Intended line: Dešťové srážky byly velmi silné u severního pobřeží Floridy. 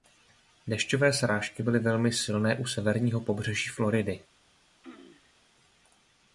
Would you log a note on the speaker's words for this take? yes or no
no